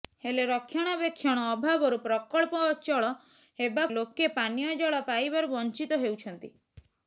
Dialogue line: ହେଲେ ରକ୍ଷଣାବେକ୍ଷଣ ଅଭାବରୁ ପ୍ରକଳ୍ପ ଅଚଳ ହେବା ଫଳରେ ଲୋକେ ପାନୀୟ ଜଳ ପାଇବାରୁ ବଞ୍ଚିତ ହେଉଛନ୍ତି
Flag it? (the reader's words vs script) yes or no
yes